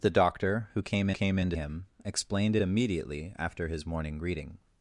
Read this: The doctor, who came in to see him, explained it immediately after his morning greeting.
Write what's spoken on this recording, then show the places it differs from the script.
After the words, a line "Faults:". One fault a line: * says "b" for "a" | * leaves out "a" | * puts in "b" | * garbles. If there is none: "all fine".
The doctor, who came came in to him, explained it immediately after his morning greeting.
Faults:
* puts in "came"
* leaves out "see"